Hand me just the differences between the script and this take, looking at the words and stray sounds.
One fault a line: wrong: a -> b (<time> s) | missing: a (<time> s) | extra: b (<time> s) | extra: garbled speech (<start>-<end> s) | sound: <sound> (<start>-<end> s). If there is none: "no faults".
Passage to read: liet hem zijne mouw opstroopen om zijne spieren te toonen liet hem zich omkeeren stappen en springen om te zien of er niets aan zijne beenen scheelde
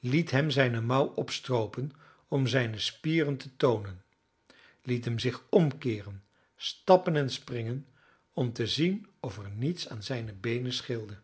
no faults